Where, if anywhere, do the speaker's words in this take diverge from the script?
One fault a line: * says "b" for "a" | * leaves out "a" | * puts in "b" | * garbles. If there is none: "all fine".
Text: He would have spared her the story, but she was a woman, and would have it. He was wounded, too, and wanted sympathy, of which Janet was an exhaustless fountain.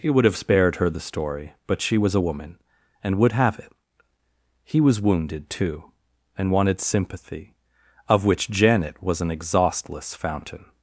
all fine